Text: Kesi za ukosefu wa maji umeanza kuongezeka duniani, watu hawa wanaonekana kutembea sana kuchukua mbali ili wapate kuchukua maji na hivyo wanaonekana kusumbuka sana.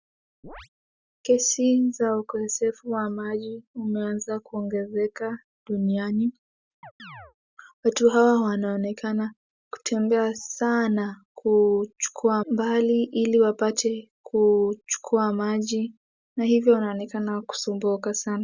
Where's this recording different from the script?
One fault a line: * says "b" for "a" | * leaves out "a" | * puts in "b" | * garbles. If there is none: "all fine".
all fine